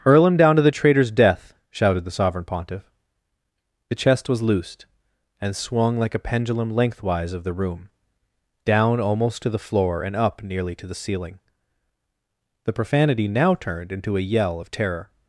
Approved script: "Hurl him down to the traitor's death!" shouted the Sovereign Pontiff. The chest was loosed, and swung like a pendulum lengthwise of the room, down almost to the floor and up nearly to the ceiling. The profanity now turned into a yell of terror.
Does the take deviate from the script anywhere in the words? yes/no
no